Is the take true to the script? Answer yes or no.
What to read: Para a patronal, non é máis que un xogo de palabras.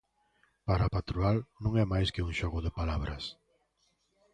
yes